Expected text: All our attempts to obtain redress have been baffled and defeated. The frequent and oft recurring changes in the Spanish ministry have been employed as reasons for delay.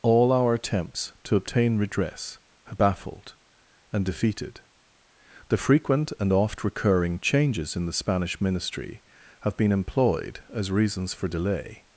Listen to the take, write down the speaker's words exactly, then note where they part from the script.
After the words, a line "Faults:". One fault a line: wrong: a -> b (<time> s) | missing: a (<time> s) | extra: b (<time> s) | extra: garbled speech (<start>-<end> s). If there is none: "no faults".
All our attempts to obtain redress have baffled and defeated. The frequent and oft recurring changes in the Spanish ministry have been employed as reasons for delay.
Faults:
missing: been (2.8 s)